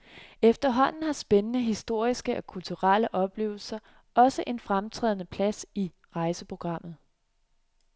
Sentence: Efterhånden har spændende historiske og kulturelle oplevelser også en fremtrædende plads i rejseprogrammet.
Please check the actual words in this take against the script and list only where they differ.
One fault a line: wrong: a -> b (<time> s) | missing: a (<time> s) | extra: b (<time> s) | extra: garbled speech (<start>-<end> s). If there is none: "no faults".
no faults